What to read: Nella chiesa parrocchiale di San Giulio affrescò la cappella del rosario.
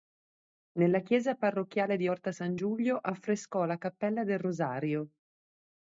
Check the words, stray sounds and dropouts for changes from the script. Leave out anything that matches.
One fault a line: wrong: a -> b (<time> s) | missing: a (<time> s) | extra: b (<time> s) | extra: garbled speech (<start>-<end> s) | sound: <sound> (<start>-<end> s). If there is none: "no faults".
extra: Orta (2.1 s)